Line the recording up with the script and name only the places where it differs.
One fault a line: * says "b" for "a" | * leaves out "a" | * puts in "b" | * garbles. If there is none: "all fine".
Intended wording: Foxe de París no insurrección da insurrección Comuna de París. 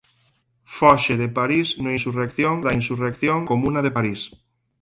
all fine